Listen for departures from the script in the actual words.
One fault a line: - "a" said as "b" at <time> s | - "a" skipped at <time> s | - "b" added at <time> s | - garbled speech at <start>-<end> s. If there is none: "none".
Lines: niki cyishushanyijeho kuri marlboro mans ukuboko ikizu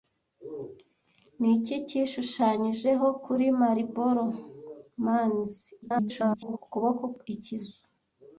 - garbled speech at 5.8-6.6 s